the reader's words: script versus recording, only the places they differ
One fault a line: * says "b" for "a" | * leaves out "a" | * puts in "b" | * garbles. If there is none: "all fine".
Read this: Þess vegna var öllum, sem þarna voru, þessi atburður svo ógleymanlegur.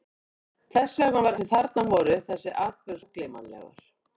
* leaves out "öllum"
* leaves out "svo"